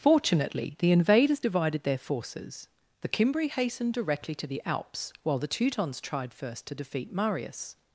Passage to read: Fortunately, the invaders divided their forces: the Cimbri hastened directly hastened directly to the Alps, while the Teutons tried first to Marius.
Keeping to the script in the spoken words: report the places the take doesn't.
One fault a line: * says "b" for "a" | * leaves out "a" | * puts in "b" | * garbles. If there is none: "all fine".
* leaves out "hastened directly"
* puts in "defeat"